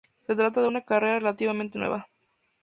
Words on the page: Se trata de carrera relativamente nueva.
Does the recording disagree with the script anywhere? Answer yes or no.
yes